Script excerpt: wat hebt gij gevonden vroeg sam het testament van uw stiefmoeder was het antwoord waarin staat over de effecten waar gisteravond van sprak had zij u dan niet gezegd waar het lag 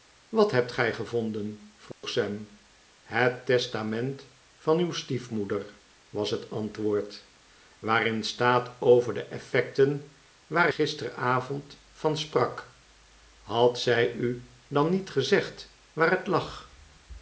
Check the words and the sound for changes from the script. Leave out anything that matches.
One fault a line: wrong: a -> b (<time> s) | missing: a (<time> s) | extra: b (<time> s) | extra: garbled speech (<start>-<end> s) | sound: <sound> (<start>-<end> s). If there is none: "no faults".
sound: dropout (1.9-2.0 s)